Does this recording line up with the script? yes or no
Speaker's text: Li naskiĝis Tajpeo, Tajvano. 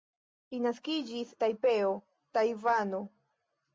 yes